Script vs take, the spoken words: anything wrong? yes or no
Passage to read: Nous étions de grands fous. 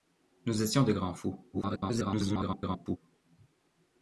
yes